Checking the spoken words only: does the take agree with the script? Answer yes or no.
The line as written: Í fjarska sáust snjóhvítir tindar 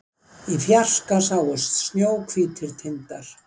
yes